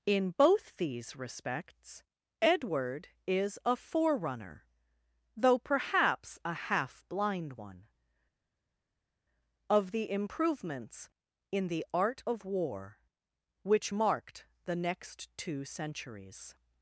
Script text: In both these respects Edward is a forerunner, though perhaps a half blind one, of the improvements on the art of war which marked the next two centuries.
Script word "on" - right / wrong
wrong